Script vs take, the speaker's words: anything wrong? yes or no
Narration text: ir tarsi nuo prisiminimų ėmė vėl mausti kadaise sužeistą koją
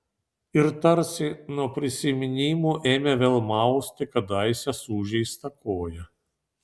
no